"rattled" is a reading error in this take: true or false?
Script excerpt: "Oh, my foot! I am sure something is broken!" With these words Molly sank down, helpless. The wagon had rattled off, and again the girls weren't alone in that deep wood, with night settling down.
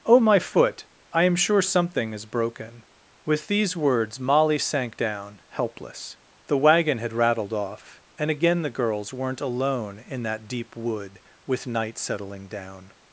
false